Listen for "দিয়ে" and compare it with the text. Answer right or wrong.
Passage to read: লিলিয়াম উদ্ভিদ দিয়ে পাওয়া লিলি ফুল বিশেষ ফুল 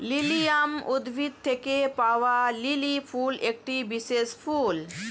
wrong